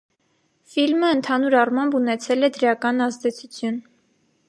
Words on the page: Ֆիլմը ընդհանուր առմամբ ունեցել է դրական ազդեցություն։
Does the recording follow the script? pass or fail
pass